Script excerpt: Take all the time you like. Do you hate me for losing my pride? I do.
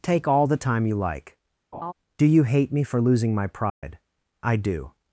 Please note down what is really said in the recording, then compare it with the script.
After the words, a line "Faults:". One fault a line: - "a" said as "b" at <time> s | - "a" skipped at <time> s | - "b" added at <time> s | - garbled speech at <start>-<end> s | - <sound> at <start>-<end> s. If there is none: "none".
Take all the time you like. Do you hate me for losing my pride? I do.
Faults:
- laugh at 1.7-1.9 s
- dropout at 3.7-3.8 s